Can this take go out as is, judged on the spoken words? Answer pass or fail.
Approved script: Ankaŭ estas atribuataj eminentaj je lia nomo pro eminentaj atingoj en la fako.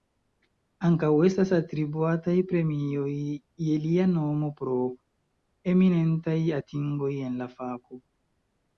fail